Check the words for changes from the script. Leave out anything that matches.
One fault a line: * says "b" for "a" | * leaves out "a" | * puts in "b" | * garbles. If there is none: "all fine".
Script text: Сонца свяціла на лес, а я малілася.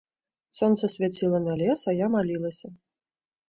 all fine